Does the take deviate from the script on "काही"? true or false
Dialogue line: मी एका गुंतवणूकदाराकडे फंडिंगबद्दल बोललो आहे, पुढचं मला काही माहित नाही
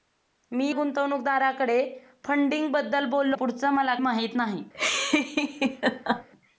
true